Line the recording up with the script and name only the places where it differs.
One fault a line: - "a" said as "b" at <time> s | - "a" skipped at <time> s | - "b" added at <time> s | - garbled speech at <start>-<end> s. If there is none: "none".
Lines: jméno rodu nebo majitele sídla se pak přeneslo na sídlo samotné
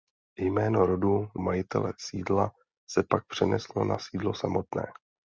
- "nebo" skipped at 1.3 s